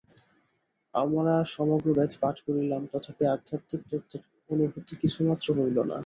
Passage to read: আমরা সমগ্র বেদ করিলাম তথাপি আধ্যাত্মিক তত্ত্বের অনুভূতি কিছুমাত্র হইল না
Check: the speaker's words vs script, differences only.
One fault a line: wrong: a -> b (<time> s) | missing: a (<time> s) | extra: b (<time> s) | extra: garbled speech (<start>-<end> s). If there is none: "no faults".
extra: পাঠ (2.2 s)